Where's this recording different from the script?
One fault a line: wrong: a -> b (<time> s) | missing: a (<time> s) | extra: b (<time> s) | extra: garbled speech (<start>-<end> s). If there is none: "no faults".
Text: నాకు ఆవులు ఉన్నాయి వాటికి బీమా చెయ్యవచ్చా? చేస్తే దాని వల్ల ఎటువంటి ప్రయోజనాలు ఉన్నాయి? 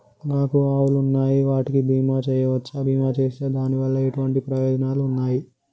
extra: బీమా (2.9 s)